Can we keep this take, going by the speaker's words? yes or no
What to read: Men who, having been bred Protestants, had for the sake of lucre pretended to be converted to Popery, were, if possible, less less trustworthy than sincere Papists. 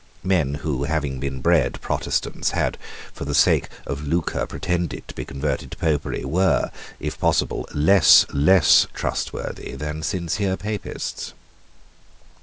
yes